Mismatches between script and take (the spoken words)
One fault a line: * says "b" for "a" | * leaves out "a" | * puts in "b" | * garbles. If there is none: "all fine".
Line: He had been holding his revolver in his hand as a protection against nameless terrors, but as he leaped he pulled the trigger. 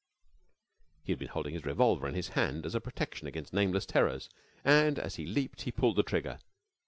* says "and" for "but"